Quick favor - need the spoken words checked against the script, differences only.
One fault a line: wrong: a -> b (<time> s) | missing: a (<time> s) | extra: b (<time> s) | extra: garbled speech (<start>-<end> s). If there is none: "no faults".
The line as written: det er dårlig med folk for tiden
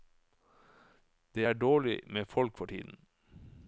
no faults